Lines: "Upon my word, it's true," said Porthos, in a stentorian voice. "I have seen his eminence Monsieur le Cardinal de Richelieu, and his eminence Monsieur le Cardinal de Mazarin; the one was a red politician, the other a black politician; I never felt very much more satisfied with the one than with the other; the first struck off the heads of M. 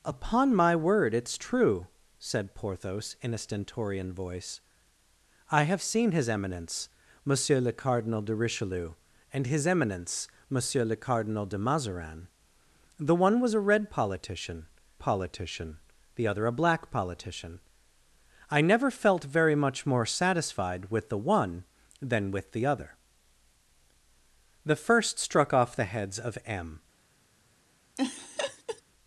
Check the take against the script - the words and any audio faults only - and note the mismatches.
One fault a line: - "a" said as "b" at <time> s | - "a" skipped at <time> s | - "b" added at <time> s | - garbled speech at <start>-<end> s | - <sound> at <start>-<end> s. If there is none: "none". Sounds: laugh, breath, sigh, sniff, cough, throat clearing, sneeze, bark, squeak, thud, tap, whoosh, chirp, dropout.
- "politician" added at 15.0 s
- laugh at 28.0-28.8 s